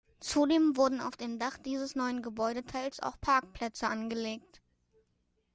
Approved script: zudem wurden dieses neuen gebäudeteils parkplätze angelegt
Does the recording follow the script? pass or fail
fail